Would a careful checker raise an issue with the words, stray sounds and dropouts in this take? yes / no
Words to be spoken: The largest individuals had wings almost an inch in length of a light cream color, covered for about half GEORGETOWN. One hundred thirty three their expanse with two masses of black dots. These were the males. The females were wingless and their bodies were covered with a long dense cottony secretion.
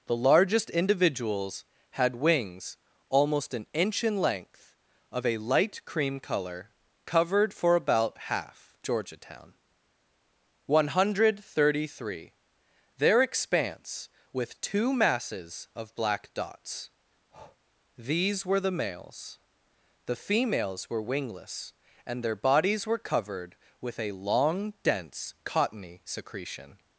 yes